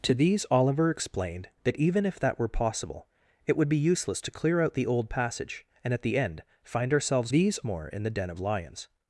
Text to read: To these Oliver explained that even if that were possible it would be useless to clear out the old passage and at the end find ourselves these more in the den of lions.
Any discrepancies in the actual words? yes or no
no